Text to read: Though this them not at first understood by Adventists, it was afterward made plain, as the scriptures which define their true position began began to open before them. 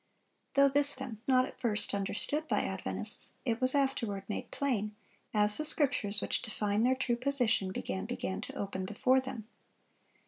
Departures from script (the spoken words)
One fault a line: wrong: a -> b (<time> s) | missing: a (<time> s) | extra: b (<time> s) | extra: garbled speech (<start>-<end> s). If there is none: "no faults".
no faults